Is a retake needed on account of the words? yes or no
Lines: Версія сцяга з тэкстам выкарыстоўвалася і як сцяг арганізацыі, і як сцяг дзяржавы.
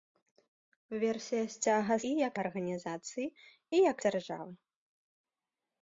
yes